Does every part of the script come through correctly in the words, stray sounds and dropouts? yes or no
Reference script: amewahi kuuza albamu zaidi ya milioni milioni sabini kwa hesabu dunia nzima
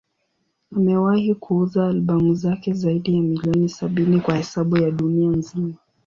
no